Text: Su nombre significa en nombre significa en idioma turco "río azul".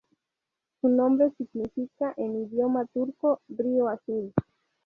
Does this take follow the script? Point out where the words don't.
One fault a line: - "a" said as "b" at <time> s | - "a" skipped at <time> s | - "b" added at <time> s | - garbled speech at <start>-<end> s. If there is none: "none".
- "nombre significa en" skipped at 2.4 s